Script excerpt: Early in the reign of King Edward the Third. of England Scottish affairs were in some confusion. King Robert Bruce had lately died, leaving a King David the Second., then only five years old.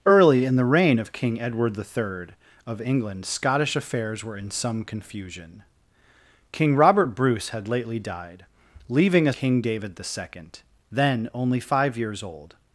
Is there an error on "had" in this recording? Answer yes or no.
no